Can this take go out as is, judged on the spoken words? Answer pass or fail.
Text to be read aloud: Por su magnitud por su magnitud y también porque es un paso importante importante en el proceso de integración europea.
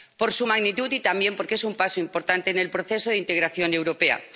fail